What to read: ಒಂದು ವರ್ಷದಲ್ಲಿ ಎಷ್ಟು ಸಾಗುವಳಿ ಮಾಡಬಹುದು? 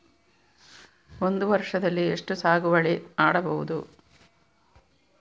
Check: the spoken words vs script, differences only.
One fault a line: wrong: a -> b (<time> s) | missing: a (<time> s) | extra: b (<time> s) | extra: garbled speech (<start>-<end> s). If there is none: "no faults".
no faults